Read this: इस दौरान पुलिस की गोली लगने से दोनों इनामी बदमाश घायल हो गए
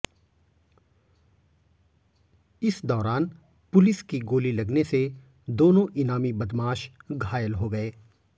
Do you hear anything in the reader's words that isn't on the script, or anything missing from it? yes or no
no